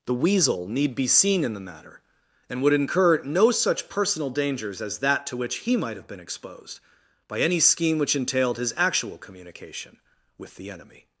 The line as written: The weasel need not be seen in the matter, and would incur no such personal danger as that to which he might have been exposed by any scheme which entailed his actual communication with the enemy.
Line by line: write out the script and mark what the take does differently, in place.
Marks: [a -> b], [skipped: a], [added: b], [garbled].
The weasel need [skipped: not] be seen in the matter, and would incur no such personal [danger -> dangers] as that to which he might have been exposed by any scheme which entailed his actual communication with the enemy.